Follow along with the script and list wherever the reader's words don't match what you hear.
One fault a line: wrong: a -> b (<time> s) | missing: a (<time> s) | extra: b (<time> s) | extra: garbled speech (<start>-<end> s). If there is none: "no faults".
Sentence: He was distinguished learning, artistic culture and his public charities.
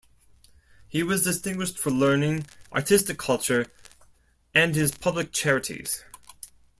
extra: for (1.8 s)